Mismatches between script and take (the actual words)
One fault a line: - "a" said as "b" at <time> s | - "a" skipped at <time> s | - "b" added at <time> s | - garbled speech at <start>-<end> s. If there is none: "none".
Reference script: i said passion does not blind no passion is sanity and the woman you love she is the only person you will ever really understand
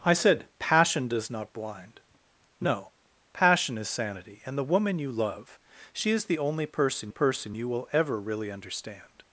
- "person" added at 7.1 s